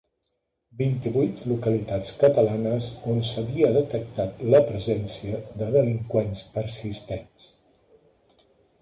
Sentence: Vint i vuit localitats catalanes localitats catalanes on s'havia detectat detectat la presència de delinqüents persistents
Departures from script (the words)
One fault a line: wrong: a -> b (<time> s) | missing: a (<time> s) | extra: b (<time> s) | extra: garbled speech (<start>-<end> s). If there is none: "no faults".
missing: localitats catalanes (2.9 s)
missing: detectat (4.4 s)